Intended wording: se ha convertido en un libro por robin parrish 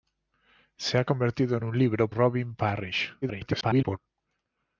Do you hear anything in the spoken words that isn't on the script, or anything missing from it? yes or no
yes